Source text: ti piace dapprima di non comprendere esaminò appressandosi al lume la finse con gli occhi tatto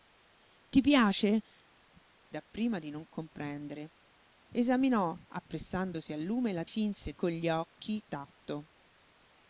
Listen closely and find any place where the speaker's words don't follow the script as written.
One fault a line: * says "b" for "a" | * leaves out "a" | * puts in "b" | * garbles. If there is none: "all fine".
all fine